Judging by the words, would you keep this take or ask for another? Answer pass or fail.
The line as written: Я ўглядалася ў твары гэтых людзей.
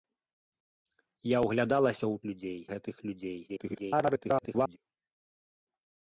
fail